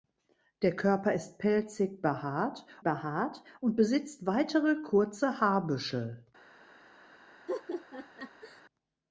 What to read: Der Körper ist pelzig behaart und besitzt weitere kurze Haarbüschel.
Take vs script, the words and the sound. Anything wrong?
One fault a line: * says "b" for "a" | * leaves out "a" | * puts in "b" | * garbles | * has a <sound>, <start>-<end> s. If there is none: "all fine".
* puts in "behaart"
* has a laugh, 7.5-8.6 s